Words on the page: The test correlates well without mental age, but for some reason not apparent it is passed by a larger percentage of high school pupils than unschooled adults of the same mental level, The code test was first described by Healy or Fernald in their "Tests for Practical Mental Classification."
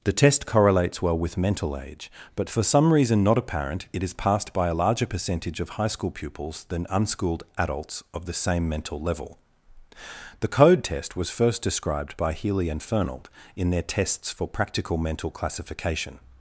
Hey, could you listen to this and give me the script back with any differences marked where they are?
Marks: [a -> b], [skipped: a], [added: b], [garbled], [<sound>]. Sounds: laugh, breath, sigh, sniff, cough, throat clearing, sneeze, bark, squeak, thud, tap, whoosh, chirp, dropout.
The test correlates well [without -> with] mental age, but for some reason not apparent it is passed by a larger percentage of high school pupils than unschooled adults of the same mental level, The code test was first described by Healy [or -> and] Fernald in their "Tests for Practical Mental Classification."